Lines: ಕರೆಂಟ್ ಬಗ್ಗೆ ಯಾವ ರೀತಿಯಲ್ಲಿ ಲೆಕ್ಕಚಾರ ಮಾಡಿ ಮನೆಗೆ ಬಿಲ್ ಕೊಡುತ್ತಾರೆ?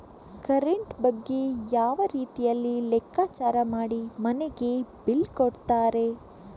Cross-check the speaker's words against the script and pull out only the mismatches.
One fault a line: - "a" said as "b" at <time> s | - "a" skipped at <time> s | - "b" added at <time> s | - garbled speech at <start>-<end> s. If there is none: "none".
none